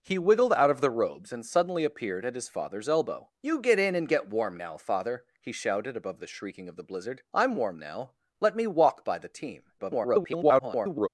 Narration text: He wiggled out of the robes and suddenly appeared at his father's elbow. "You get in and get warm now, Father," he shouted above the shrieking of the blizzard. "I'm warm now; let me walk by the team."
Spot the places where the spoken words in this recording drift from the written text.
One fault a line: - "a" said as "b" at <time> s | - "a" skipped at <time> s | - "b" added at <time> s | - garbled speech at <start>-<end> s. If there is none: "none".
- garbled speech at 9.8-11.1 s